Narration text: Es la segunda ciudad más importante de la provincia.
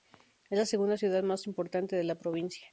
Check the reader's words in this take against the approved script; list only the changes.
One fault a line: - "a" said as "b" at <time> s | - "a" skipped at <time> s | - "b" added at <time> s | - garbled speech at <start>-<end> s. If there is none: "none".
none